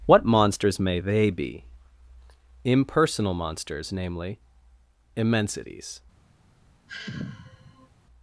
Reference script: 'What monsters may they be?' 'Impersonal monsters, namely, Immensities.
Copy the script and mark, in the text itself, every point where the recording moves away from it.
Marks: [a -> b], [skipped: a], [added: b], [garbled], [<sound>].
'What monsters may they be?' 'Impersonal monsters, namely, Immensities. [sigh]